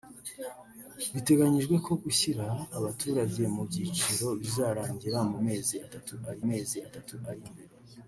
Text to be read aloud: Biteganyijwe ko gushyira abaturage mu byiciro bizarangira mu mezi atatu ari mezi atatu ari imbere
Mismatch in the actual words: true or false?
false